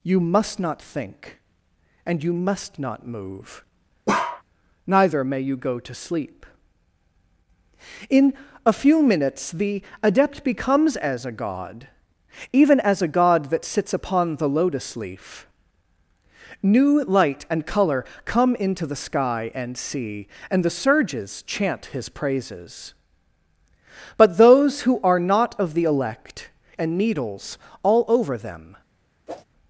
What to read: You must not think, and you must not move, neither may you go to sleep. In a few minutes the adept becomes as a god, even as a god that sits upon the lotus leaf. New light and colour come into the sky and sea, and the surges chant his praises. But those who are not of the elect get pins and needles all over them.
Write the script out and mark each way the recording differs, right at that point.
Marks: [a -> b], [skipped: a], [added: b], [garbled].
You must not think, and you must not move, neither may you go to sleep. In a few minutes the adept becomes as a god, even as a god that sits upon the lotus leaf. New light and colour come into the sky and sea, and the surges chant his praises. But those who are not of the elect [skipped: get pins] and needles all over them.